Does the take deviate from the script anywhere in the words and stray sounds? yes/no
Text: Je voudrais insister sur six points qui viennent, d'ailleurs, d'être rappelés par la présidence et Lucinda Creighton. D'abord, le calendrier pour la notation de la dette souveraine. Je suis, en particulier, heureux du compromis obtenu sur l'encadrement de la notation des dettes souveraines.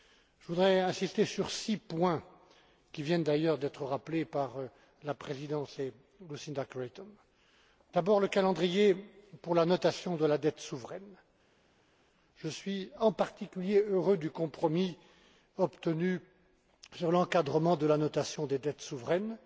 no